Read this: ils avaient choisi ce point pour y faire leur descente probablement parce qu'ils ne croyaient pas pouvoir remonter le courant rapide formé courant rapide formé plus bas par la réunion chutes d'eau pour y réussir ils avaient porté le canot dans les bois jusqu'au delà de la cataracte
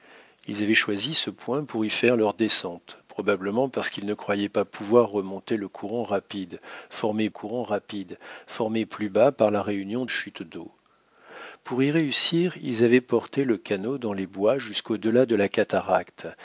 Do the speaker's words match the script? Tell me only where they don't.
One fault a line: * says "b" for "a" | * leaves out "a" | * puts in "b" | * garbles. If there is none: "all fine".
all fine